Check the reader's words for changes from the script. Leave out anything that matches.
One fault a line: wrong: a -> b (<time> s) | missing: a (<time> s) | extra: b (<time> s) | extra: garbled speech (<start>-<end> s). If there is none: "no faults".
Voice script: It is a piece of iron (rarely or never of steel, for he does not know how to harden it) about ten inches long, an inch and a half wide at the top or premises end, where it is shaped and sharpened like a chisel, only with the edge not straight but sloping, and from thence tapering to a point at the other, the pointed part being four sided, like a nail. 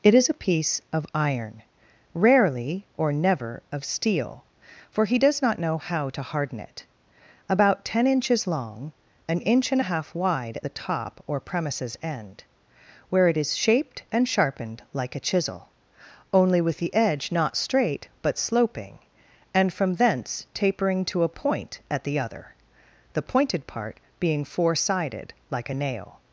no faults